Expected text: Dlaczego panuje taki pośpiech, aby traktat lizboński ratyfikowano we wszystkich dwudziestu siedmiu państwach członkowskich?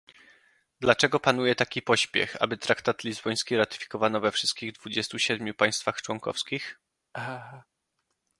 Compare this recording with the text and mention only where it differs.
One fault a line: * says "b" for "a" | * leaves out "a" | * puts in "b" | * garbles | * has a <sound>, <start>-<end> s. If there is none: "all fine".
* has a laugh, 7.1-7.7 s